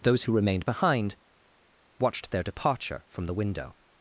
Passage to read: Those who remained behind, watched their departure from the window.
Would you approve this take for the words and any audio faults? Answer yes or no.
yes